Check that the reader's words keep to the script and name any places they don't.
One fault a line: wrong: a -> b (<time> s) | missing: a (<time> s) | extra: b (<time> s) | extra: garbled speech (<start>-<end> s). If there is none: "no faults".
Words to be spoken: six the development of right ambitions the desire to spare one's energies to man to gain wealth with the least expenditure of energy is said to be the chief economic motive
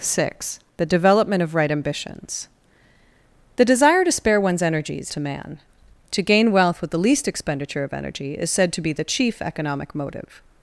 no faults